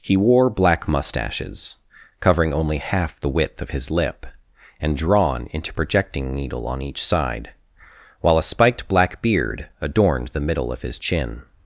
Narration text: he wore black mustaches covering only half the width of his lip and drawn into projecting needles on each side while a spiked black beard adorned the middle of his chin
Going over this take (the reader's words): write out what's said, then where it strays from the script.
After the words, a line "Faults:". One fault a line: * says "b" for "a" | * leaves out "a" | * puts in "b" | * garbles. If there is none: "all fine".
he wore black mustaches covering only half the width of his lip and drawn into projecting needle on each side while a spiked black beard adorned the middle of his chin
Faults:
* says "needle" for "needles"